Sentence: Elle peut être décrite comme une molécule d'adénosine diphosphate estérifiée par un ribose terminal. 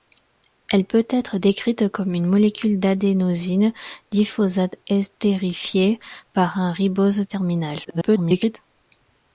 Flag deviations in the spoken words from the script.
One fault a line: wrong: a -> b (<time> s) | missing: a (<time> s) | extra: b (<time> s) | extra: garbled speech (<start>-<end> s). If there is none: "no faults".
extra: garbled speech (7.8-8.6 s)